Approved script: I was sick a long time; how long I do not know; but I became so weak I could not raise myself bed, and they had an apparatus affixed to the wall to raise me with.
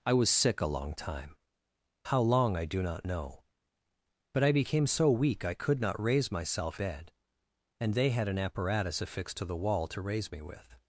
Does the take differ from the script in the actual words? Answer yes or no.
no